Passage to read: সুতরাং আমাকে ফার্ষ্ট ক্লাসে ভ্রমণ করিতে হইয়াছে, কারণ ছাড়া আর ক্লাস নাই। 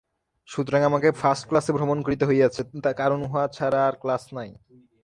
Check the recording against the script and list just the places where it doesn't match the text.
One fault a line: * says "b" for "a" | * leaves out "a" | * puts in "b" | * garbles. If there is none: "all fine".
* puts in "উহা"